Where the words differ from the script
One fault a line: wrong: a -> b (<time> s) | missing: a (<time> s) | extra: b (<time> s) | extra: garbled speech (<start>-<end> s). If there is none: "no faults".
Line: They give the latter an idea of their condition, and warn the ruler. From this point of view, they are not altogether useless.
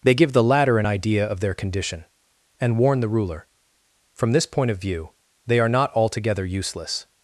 no faults